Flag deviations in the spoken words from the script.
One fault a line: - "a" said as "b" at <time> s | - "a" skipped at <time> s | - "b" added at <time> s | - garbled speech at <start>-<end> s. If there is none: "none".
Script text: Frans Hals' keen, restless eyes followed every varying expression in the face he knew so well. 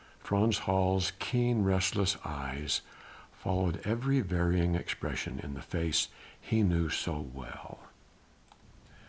none